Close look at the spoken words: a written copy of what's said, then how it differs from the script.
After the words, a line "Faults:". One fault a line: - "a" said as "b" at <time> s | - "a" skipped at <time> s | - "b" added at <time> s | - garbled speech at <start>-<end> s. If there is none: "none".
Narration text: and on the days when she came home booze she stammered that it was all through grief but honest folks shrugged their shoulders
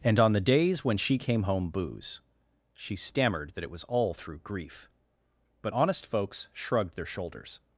and on the days when she came home booze she stammered that it was all through grief but honest folks shrugged their shoulders
Faults:
none